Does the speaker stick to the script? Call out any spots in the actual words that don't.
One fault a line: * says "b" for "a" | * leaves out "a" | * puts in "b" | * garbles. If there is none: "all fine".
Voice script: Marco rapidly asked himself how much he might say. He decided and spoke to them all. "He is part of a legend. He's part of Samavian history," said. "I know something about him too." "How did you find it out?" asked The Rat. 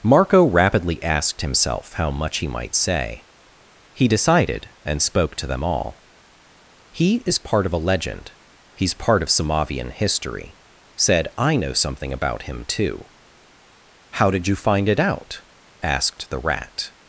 all fine